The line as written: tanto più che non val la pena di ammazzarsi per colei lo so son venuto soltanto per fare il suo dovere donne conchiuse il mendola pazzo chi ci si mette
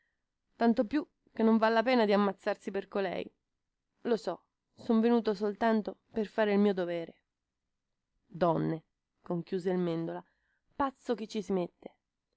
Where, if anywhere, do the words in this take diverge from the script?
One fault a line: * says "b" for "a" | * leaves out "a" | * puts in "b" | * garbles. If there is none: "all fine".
* says "mio" for "suo"